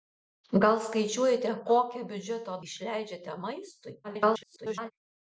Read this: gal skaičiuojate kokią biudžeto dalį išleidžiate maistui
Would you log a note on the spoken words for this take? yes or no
yes